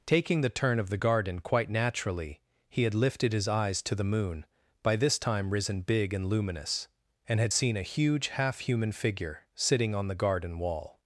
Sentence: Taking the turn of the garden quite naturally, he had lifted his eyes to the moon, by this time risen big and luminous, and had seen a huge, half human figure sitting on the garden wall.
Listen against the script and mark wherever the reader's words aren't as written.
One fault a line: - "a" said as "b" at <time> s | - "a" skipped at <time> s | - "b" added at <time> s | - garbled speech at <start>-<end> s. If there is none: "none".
none